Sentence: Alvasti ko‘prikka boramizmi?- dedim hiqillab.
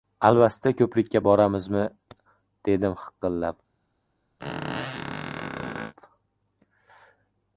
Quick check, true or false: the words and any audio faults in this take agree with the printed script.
false